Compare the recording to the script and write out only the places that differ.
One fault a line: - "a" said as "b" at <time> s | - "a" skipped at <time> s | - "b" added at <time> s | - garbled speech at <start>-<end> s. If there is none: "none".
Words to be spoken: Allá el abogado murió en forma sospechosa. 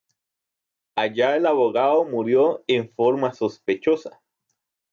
none